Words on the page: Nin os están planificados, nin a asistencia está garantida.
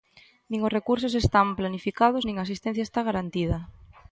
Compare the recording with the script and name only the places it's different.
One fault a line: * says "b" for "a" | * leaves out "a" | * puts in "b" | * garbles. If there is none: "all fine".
* puts in "recursos"